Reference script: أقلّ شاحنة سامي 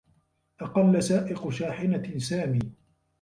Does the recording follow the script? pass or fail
fail